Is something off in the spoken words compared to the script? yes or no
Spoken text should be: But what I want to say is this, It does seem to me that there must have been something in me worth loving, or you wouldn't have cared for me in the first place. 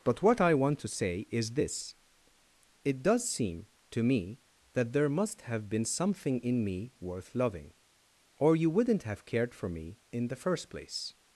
no